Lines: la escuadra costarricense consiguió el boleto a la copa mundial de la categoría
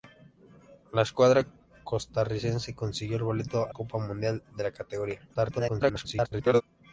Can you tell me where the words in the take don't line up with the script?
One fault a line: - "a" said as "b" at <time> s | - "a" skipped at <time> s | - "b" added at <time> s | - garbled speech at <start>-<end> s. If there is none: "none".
- "la" skipped at 3.7 s
- garbled speech at 5.3-6.6 s